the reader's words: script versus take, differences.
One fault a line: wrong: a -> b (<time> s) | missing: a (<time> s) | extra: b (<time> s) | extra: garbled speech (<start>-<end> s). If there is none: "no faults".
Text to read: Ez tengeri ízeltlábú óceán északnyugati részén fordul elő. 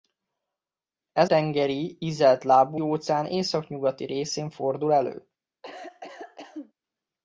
no faults